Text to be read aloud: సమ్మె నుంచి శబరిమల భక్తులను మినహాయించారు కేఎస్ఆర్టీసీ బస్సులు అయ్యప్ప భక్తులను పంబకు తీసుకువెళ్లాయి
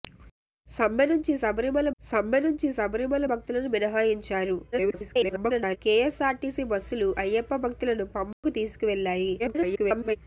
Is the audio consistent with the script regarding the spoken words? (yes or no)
no